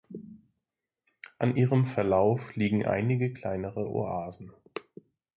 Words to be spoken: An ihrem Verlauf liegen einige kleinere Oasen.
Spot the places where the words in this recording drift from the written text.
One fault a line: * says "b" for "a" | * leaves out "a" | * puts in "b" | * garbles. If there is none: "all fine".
all fine